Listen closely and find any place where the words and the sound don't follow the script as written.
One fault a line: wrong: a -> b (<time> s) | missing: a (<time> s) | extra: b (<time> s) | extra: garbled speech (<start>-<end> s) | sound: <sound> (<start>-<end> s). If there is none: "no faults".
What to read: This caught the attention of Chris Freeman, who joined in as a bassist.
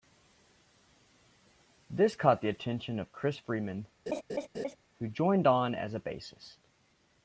sound: laugh (4.1-4.8 s)
wrong: in -> on (5.5 s)